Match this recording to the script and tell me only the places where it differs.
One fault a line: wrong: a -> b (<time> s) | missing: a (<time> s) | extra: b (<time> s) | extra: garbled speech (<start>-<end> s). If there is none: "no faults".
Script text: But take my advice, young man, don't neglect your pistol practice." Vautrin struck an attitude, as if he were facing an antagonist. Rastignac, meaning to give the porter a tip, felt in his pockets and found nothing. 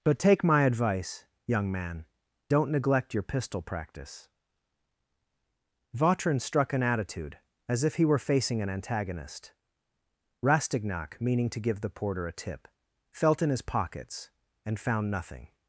no faults